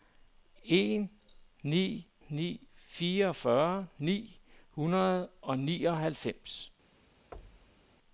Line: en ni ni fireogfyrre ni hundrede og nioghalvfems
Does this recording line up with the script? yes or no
yes